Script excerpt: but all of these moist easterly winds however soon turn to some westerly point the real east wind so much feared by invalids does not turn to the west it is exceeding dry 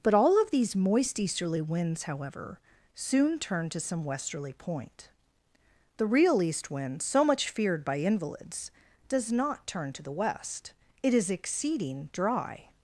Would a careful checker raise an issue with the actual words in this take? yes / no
no